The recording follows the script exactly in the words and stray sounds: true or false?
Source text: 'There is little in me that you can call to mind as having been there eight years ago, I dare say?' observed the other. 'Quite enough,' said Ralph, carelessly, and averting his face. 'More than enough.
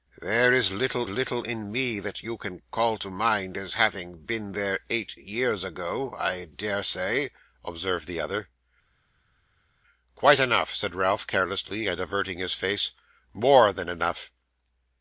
false